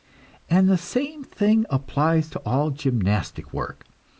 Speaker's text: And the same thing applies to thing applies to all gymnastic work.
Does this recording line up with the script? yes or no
no